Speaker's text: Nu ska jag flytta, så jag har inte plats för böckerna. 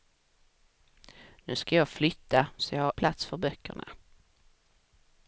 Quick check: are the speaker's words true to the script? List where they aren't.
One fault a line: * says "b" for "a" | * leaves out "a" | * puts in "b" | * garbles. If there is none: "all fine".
* leaves out "inte"